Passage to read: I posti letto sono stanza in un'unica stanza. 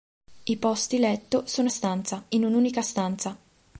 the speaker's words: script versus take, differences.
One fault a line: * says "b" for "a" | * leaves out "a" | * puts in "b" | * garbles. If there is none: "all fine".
all fine